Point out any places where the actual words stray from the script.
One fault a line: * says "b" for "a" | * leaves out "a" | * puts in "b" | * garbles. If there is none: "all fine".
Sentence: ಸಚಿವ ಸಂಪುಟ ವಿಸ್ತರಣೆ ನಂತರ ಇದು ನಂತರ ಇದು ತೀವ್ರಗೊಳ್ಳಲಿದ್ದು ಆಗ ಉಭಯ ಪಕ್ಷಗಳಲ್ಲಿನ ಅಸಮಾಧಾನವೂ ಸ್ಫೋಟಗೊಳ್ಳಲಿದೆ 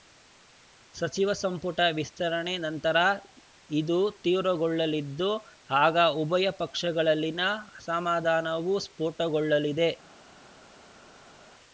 * leaves out "ನಂತರ ಇದು"